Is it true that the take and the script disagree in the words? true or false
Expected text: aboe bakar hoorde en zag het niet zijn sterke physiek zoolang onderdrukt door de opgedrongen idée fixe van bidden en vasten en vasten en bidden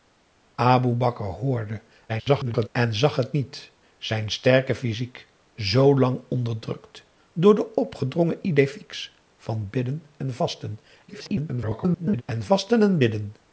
true